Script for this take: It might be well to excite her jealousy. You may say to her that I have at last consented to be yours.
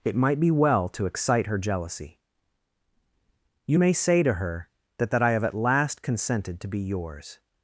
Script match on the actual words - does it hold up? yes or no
no